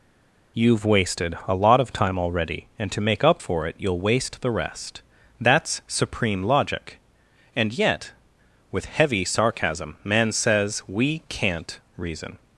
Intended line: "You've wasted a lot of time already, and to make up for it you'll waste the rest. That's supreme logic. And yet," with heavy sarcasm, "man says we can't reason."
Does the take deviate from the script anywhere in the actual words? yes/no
no